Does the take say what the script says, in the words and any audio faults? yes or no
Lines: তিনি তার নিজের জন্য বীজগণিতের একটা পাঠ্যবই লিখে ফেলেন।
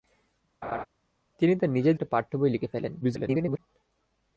no